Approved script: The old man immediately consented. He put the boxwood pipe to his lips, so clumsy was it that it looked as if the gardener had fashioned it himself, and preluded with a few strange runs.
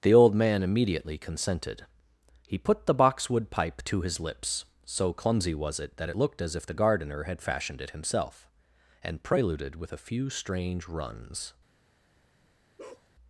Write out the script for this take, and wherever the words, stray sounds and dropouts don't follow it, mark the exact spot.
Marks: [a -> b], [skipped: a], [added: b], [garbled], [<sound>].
The old man immediately consented. He put the boxwood pipe to his lips, so clumsy was it that it looked as if the gardener had fashioned it himself, and preluded with a few strange runs. [bark]